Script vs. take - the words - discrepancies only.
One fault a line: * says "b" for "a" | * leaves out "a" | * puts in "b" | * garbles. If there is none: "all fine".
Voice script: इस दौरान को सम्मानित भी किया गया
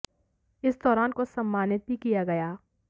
all fine